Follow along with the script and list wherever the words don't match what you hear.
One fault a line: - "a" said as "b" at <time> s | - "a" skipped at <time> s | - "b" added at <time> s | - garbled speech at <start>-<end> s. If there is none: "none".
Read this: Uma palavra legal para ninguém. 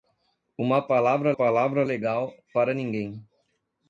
- "palavra" added at 1.3 s